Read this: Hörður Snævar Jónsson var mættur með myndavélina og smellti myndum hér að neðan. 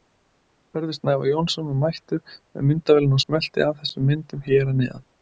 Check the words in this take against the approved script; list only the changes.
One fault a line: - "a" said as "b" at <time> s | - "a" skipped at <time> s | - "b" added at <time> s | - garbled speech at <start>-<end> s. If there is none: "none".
- "af þessum" added at 3.7 s